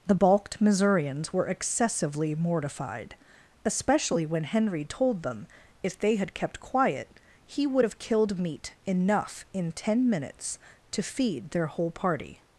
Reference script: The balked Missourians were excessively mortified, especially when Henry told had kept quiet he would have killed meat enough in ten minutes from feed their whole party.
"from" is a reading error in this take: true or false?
true